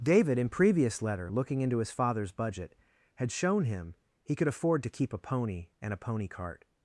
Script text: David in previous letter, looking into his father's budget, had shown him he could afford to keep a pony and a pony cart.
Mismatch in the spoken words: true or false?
false